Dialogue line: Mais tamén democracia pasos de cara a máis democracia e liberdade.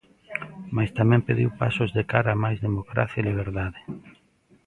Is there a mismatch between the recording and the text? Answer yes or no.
yes